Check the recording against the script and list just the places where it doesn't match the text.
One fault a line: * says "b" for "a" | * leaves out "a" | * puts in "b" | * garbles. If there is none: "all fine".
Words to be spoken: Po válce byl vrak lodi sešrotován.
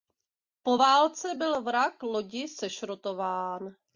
all fine